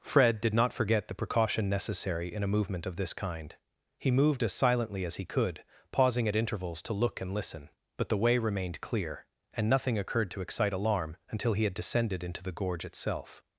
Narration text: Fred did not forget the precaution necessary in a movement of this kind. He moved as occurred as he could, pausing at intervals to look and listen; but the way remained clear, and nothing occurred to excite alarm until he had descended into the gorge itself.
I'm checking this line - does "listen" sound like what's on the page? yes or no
yes